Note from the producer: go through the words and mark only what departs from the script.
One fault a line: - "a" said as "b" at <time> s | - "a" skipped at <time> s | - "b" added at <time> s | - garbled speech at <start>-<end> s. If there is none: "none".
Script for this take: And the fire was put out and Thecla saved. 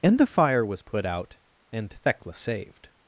none